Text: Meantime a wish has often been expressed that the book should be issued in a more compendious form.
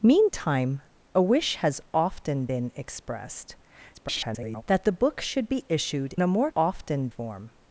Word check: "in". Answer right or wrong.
wrong